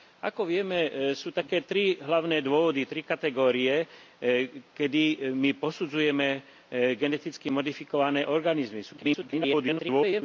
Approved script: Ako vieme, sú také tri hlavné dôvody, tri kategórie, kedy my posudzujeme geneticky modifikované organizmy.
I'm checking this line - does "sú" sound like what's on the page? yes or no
yes